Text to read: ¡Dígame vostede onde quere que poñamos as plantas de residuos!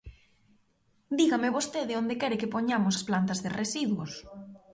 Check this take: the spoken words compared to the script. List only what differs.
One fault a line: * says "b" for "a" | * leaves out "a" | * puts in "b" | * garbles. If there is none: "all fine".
all fine